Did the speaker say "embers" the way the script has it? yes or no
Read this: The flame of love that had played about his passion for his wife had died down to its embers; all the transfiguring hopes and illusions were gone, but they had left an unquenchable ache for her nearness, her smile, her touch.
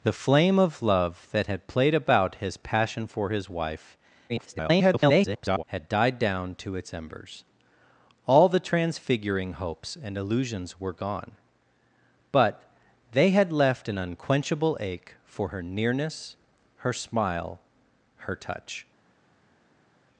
yes